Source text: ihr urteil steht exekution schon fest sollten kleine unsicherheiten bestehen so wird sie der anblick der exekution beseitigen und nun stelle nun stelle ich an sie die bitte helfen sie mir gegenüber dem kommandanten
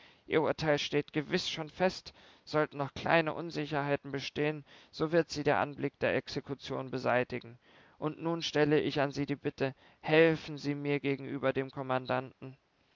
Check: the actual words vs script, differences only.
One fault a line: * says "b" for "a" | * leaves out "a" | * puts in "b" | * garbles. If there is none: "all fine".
* says "gewiß" for "exekution"
* puts in "noch"
* leaves out "nun stelle"